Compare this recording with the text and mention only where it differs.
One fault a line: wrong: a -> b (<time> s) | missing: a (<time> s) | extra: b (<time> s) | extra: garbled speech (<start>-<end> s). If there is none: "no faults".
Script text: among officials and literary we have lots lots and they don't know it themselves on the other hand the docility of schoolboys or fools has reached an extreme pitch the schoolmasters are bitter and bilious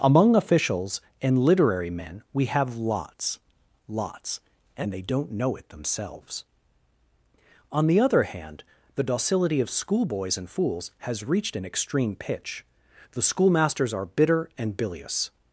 extra: men (1.9 s)
wrong: or -> and (10.4 s)